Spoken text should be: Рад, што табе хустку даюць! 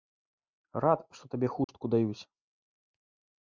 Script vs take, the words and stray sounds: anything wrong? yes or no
yes